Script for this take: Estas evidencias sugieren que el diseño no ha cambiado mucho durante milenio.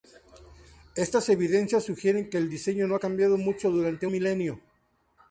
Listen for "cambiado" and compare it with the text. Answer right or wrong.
right